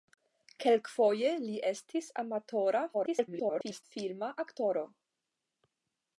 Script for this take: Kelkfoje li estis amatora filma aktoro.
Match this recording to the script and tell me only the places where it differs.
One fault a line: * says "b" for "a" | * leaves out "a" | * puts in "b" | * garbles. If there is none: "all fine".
* garbles